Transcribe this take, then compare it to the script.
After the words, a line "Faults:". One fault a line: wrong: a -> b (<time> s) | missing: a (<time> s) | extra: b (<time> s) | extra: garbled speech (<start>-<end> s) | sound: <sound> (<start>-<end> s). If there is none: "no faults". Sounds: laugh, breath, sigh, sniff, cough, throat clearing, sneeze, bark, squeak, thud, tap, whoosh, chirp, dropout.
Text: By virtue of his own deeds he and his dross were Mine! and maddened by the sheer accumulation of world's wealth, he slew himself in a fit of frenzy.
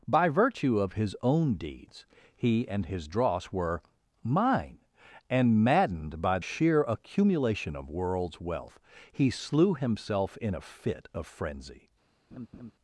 By virtue of his own deeds he and his dross were Mine! and maddened by sheer accumulation of world's wealth, he slew himself in a fit of frenzy.
Faults:
missing: the (6.4 s)
sound: laugh (12.3-12.7 s)